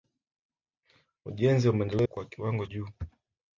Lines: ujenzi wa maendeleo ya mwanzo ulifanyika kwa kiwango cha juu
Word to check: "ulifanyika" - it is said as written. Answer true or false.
false